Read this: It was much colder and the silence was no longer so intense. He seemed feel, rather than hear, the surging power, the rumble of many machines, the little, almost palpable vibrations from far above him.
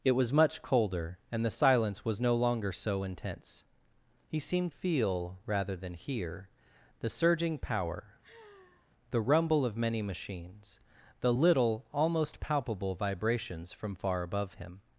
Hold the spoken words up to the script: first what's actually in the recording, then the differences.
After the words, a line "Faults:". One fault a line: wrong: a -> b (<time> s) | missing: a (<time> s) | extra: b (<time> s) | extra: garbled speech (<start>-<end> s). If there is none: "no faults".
It was much colder and the silence was no longer so intense. He seemed feel, rather than hear, the surging power, the rumble of many machines, the little, almost palpable vibrations from far above him.
Faults:
no faults